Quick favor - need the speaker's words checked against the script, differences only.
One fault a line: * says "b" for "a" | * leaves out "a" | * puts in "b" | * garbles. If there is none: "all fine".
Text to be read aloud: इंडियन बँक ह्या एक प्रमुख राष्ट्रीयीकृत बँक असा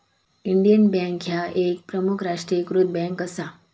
all fine